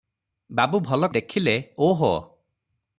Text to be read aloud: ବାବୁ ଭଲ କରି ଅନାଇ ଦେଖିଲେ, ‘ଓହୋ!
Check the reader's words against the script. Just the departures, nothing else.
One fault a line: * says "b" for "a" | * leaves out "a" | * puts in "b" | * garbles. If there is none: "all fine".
* leaves out "କରି ଅନାଇ"